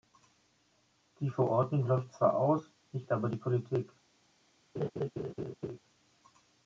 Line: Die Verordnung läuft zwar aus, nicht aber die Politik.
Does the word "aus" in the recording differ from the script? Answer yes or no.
no